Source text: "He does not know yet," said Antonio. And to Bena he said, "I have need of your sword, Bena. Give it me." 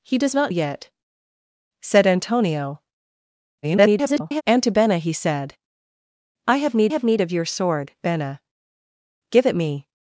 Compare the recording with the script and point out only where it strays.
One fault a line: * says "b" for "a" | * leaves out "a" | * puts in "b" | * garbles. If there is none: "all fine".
* leaves out "know"
* garbles
* puts in "have need"